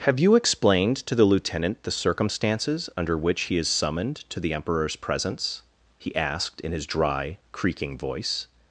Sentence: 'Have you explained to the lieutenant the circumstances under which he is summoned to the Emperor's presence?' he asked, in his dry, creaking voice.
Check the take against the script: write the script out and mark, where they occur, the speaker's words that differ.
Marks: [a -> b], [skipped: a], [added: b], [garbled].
'Have you explained to the lieutenant the circumstances under which he is summoned to the Emperor's presence?' he asked, in his dry, creaking voice.